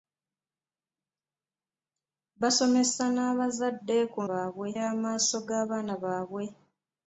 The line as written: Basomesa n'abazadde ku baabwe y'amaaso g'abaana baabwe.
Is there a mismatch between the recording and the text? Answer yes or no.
no